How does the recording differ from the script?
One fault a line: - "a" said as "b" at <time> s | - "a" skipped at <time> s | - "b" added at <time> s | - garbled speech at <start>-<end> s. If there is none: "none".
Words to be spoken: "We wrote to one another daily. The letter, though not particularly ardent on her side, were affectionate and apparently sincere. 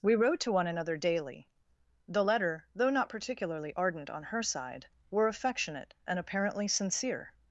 none